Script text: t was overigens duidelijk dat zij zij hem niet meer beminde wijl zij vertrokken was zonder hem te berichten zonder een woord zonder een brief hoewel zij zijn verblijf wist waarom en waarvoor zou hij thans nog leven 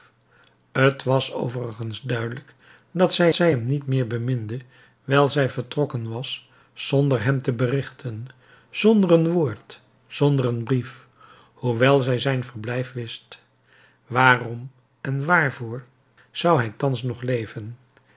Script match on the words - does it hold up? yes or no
yes